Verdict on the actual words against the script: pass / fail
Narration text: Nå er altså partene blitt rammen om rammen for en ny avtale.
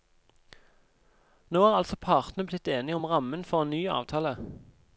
fail